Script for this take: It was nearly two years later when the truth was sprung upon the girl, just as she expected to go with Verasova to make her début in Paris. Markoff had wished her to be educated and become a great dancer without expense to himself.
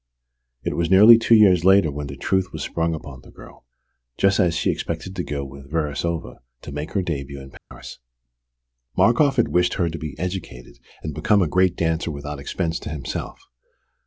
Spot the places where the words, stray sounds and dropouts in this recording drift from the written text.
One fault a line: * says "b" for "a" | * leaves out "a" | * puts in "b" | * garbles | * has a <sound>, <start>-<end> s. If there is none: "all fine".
* has a dropout, 7.6-7.7 s